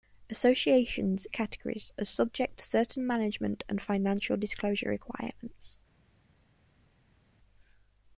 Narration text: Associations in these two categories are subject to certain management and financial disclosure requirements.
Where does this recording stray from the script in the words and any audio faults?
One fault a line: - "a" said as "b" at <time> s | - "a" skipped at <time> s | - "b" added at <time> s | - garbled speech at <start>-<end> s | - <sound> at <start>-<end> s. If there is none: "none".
- "in these two" skipped at 1.2 s